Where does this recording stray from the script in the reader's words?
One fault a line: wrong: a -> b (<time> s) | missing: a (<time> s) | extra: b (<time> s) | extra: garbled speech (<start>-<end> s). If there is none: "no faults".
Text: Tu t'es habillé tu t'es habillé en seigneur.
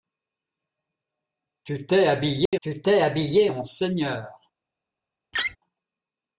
no faults